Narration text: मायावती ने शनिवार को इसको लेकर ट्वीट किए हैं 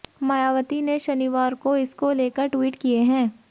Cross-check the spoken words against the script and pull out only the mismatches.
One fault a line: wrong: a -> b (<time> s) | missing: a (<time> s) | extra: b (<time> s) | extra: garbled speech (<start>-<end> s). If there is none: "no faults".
no faults